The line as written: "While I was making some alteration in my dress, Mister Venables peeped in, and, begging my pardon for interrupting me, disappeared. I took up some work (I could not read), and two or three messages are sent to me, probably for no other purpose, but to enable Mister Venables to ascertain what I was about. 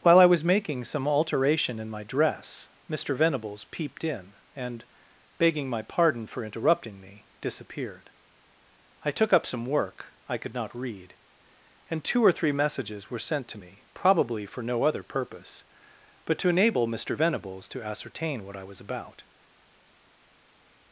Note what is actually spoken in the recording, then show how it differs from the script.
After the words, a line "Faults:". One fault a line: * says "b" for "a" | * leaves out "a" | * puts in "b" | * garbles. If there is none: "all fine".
"While I was making some alteration in my dress, Mister Venables peeped in, and, begging my pardon for interrupting me, disappeared. I took up some work (I could not read), and two or three messages were sent to me, probably for no other purpose, but to enable Mister Venables to ascertain what I was about.
Faults:
* says "were" for "are"